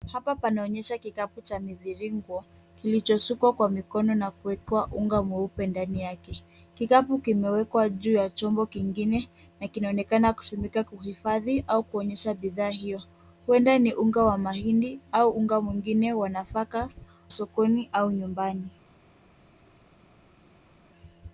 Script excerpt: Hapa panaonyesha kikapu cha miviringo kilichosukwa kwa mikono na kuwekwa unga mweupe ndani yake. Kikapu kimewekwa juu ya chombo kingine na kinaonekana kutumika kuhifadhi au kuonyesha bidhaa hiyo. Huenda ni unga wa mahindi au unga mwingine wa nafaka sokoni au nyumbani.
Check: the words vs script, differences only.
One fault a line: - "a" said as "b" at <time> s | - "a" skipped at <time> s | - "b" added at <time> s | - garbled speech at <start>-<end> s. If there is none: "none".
none